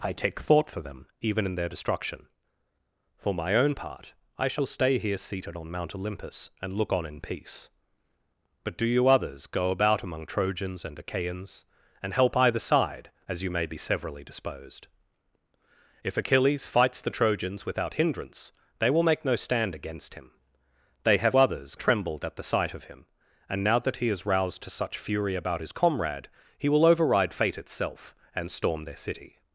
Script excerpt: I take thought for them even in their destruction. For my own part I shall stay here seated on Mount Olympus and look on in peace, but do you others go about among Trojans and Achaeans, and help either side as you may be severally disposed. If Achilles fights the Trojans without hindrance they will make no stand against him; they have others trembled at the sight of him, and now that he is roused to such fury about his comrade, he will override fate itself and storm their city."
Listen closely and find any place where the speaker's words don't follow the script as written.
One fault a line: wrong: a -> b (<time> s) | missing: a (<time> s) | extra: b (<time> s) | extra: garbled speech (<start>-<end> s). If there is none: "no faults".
no faults